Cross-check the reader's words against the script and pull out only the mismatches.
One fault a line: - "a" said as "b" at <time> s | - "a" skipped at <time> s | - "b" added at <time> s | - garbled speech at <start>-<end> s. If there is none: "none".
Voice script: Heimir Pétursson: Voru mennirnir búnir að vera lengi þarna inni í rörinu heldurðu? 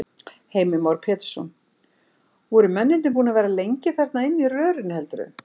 - "Már" added at 0.8 s